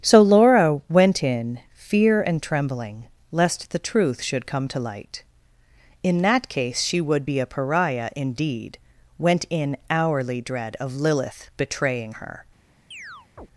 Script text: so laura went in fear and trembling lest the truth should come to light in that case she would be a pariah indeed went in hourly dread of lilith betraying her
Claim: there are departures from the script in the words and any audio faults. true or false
true